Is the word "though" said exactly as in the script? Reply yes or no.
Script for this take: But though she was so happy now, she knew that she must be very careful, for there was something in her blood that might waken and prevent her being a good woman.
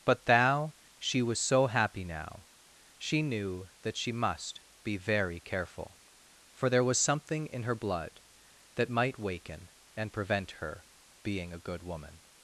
no